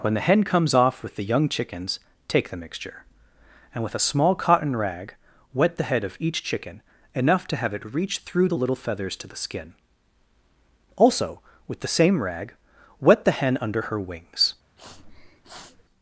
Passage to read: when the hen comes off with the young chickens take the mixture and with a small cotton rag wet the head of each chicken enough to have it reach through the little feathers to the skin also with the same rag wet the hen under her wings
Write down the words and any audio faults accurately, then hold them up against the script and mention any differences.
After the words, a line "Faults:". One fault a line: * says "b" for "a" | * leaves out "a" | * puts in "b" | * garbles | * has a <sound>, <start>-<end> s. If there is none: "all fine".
when the hen comes off with the young chickens take the mixture and with a small cotton rag wet the head of each chicken enough to have it reach through the little feathers to the skin also with the same rag wet the hen under her wings
Faults:
* has a sniff, 14.8-15.8 s